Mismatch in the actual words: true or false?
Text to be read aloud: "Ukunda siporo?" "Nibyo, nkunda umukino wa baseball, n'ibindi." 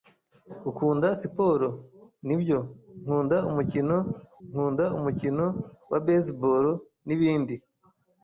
true